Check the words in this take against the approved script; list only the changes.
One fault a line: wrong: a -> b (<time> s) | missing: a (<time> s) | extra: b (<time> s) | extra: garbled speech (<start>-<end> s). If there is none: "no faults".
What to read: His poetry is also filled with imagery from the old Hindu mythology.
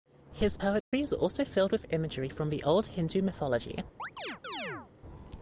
no faults